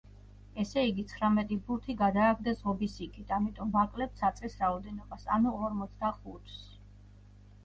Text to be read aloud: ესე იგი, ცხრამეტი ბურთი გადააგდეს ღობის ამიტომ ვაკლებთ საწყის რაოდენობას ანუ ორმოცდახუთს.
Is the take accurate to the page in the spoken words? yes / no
no